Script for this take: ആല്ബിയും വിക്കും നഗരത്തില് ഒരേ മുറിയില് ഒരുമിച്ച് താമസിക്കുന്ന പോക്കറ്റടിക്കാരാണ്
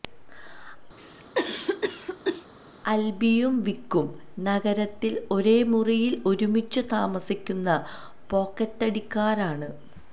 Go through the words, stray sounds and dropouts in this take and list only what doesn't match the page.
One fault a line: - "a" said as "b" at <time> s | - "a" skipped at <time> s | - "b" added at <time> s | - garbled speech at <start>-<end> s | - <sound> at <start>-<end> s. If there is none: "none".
- cough at 1.0-2.5 s